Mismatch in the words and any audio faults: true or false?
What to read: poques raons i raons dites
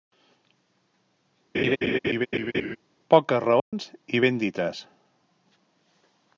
true